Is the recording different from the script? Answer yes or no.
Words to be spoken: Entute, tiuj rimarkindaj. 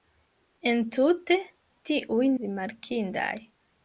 no